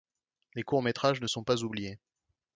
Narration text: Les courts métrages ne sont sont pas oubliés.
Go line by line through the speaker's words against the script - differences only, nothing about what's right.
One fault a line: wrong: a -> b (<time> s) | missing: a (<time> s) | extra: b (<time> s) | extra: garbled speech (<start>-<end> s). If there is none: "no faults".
missing: sont (1.4 s)